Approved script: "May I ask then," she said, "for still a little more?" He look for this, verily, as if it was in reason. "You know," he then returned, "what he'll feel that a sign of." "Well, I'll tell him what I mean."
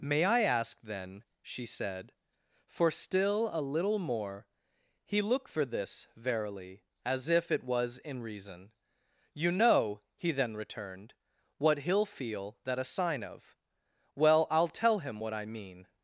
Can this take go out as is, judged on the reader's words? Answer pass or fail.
pass